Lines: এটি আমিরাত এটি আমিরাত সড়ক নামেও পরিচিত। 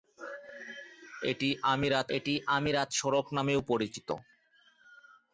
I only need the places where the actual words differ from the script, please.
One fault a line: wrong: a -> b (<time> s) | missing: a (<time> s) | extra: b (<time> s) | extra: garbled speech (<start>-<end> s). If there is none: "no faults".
no faults